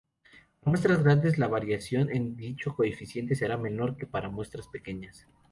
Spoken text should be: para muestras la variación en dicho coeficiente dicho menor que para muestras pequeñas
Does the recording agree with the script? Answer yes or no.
no